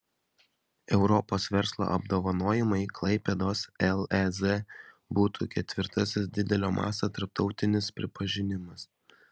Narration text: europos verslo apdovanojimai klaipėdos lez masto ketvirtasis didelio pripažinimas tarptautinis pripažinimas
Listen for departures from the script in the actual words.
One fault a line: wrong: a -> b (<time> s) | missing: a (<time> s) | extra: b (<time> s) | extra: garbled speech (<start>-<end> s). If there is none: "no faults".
wrong: masto -> būtų (5.2 s)
wrong: pripažinimas -> masto (6.8 s)